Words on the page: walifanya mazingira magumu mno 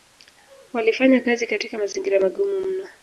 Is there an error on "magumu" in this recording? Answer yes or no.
no